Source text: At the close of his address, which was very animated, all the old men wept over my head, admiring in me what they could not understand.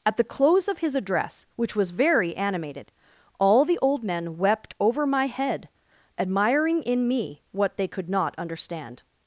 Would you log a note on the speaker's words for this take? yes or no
no